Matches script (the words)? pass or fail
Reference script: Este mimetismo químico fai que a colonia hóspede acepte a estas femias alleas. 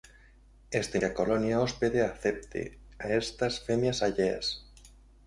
fail